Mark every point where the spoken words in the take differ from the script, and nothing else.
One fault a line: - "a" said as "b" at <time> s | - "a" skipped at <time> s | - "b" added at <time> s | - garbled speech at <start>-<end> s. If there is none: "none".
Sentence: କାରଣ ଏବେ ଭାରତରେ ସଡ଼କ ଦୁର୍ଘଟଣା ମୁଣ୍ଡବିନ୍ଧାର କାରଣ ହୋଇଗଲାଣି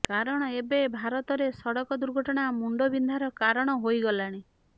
none